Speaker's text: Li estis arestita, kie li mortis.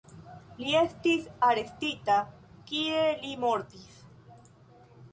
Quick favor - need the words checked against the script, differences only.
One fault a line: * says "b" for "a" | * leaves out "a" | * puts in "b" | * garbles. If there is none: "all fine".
all fine